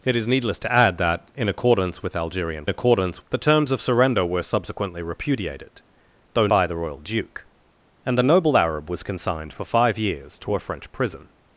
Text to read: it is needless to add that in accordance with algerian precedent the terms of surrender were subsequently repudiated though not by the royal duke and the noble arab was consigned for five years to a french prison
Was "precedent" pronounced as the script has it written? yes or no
no